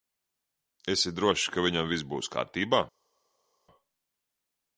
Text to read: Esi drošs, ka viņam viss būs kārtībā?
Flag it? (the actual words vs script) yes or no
no